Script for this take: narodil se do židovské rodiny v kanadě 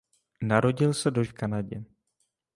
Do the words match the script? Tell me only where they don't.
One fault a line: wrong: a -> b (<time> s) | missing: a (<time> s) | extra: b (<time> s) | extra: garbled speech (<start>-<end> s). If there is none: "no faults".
missing: židovské rodiny (1.2 s)